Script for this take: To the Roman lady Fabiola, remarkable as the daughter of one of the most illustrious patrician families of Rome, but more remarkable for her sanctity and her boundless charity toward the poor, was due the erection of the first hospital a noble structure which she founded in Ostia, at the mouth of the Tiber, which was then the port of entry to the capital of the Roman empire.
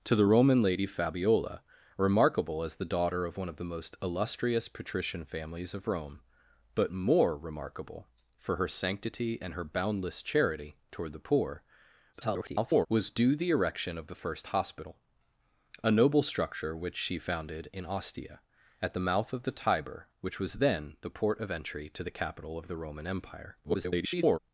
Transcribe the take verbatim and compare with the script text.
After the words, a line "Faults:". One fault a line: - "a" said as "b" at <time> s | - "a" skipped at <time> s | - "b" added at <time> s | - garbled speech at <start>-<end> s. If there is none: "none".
To the Roman lady Fabiola, remarkable as the daughter of one of the most illustrious patrician families of Rome, but more remarkable for her sanctity and her boundless charity toward the poor, [garbled] was due the erection of the first hospital a noble structure which she founded in Ostia, at the mouth of the Tiber, which was then the port of entry to the capital of the Roman empire. [garbled]
Faults:
- garbled speech at 12.1-12.9 s
- garbled speech at 23.6-24.4 s